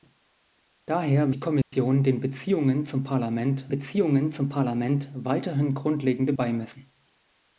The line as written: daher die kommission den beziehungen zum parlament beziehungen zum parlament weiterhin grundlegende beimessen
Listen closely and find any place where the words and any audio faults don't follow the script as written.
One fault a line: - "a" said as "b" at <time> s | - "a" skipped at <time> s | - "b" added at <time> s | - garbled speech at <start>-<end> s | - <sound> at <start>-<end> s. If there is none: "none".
- dropout at 1.6-1.7 s